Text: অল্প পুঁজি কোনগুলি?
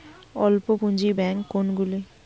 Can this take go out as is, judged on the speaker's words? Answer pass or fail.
fail